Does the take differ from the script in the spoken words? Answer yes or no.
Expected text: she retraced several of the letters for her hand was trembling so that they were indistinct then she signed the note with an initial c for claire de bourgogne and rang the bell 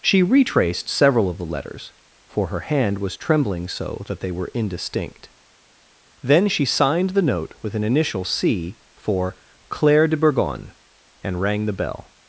no